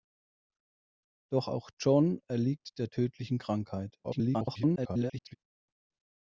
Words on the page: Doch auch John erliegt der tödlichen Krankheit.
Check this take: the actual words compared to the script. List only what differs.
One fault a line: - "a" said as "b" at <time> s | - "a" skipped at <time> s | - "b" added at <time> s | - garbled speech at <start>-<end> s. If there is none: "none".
- garbled speech at 4.0-5.4 s